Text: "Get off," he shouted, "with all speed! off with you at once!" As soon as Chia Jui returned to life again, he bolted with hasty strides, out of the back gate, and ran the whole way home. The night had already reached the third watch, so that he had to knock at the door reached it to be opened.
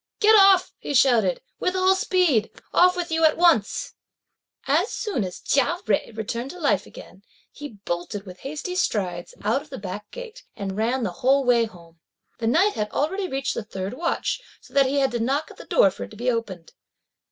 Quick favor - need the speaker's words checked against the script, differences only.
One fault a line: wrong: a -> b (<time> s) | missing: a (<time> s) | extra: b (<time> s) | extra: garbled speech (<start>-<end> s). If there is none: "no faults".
wrong: reached -> for (15.9 s)